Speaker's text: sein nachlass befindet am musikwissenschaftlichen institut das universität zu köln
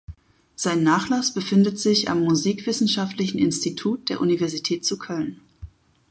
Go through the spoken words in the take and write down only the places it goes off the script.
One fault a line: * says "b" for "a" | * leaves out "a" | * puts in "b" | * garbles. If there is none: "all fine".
* puts in "sich"
* says "der" for "das"